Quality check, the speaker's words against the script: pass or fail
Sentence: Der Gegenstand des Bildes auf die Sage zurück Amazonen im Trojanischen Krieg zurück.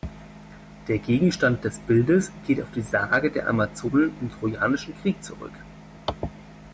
fail